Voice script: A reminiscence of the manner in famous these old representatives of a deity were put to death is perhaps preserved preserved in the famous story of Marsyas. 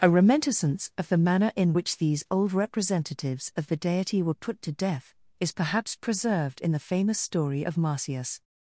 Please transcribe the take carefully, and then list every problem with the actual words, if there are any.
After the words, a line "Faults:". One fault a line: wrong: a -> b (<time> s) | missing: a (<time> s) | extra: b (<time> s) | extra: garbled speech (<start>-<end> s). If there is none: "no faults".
A reminiscence of the manner in which these old representatives of the deity were put to death is perhaps preserved in the famous story of Marsyas.
Faults:
wrong: famous -> which (1.7 s)
wrong: a -> the (3.7 s)
missing: preserved (6.6 s)